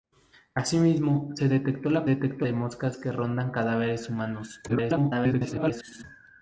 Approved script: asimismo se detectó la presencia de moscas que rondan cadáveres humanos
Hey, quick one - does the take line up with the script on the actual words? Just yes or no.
no